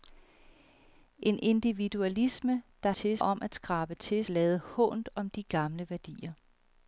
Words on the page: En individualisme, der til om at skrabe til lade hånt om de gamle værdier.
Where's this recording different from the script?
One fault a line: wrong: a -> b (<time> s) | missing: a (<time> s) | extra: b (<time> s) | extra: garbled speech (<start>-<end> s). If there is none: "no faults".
no faults